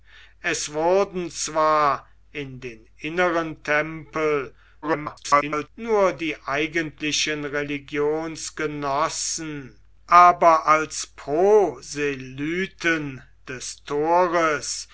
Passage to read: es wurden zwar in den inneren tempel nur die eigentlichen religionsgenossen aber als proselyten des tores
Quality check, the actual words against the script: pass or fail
fail